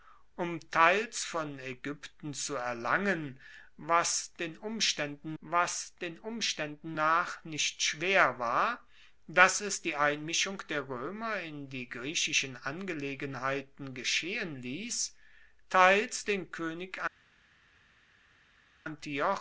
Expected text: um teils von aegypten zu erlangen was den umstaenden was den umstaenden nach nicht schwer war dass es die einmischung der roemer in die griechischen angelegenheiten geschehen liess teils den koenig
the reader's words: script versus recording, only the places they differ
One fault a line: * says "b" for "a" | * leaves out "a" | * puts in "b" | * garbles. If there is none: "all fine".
all fine